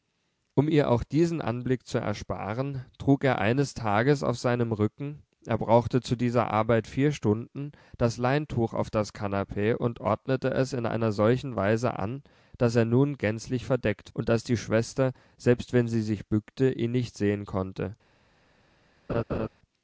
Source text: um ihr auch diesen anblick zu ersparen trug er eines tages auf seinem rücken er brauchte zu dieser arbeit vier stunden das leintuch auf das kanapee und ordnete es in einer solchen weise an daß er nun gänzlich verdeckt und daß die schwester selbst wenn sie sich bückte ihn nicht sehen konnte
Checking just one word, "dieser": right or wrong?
right